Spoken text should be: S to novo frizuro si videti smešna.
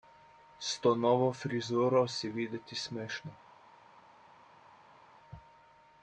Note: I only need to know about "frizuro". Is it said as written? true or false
true